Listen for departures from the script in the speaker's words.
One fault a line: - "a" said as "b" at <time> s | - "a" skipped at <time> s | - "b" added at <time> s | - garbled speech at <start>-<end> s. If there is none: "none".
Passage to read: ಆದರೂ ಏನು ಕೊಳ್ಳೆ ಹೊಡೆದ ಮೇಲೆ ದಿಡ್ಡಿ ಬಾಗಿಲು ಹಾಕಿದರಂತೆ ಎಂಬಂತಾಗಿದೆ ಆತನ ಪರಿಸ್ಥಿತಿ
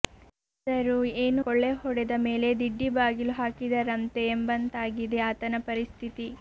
none